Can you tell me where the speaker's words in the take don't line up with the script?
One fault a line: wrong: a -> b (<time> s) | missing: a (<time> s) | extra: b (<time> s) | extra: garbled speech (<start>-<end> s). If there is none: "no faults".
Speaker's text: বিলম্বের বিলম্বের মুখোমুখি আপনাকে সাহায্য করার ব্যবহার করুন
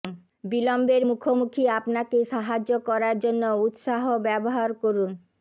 missing: বিলম্বের (1.0 s)
extra: জন্য উত্সাহ (3.2 s)